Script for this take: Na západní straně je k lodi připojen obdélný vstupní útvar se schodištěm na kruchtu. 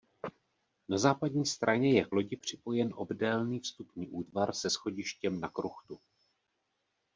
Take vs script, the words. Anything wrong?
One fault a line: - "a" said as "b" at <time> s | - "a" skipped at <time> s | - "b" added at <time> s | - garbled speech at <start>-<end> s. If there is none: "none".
none